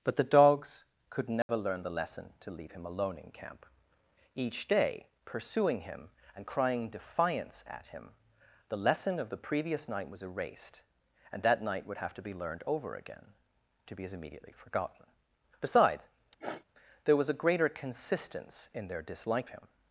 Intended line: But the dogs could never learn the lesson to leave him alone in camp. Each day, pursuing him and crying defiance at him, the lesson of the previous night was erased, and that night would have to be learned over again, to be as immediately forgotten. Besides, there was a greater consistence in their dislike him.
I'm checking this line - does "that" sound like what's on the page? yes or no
yes